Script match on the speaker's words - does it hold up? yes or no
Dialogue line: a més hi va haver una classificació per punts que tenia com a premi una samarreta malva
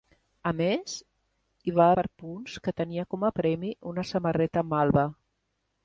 no